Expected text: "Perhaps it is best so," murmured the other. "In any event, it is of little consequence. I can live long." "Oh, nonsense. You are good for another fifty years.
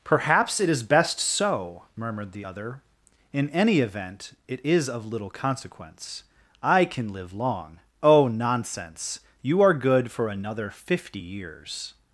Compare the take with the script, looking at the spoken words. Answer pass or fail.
pass